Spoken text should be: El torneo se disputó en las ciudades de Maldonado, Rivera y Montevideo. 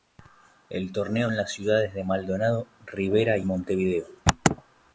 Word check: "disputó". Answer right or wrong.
wrong